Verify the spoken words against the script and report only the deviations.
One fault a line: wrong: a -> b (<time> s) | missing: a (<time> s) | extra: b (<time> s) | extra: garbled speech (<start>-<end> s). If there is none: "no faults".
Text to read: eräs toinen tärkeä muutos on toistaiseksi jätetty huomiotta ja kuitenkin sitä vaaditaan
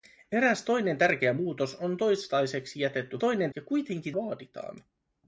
wrong: huomiotta -> toinen (3.2 s)
missing: sitä (4.2 s)